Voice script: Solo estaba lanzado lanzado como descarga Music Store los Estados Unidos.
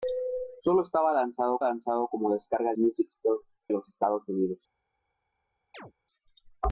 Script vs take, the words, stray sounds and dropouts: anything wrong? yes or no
yes